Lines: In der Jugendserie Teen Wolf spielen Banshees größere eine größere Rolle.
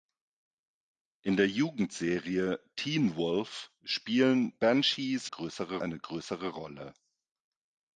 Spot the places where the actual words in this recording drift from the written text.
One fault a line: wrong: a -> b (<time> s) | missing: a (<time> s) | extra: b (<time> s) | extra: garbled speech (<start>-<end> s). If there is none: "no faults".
no faults